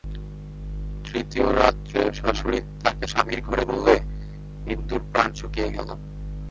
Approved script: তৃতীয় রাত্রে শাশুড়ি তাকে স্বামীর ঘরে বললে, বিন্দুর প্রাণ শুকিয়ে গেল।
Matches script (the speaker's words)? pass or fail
pass